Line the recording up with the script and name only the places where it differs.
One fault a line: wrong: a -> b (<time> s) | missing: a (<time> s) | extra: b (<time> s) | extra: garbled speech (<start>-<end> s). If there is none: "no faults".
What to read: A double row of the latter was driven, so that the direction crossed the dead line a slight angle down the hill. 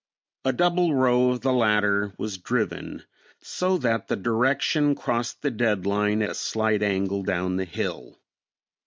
no faults